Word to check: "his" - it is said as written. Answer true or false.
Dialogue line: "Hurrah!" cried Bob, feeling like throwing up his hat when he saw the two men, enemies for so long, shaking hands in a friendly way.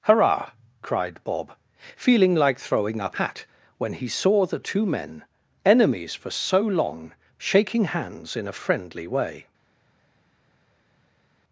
false